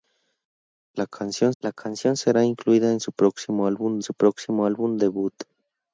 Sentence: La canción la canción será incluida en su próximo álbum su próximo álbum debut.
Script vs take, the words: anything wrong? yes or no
no